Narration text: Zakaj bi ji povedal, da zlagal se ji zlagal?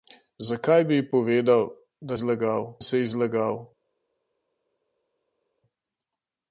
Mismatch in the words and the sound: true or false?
false